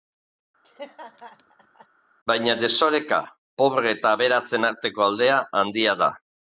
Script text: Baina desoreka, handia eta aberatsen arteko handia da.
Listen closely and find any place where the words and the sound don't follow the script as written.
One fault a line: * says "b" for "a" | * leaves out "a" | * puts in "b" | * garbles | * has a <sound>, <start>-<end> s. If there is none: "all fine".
* has a laugh, 0.6-1.9 s
* says "pobre" for "handia"
* puts in "aldea"